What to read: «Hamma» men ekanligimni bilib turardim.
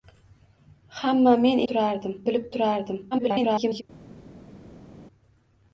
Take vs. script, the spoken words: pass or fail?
fail